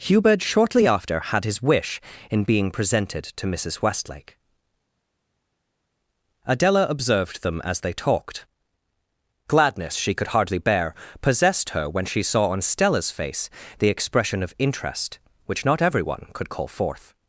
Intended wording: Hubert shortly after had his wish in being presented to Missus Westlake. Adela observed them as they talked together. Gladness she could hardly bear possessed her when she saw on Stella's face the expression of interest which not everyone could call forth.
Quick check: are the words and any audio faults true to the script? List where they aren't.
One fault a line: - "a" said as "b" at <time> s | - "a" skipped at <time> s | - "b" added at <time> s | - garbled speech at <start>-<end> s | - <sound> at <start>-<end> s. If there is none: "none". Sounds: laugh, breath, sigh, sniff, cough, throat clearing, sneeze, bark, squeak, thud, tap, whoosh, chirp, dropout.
- "together" skipped at 8.5 s